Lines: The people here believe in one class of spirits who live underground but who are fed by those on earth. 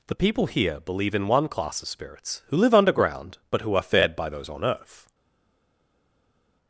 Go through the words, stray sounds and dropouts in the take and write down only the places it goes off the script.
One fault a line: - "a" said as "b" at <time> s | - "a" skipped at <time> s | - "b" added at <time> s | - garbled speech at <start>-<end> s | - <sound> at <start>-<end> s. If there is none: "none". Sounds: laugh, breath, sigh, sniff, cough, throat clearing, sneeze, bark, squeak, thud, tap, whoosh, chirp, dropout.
none